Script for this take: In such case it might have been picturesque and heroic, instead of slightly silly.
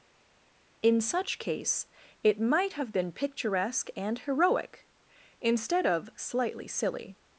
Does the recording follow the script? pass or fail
pass